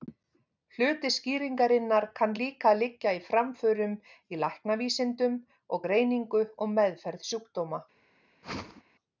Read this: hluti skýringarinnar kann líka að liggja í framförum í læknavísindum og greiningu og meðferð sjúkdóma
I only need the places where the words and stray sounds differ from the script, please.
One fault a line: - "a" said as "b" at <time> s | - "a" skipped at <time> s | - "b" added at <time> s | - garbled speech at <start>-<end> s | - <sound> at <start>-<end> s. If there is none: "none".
- whoosh at 8.4-8.8 s